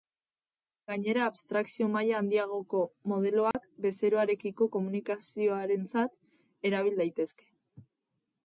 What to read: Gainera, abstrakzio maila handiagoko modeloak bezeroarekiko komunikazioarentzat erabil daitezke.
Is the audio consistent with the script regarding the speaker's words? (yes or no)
yes